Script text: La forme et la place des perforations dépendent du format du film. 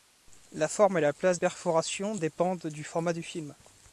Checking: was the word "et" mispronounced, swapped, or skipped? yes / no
no